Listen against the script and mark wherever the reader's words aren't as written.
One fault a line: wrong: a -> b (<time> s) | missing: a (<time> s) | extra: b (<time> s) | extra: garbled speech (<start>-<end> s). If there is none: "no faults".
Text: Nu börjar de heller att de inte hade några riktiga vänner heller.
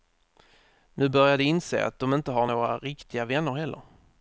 wrong: heller -> inse (1.4 s)
wrong: hade -> har (2.3 s)